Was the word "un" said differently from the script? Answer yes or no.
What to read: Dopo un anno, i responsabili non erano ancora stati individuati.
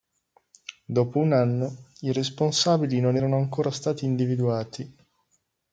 no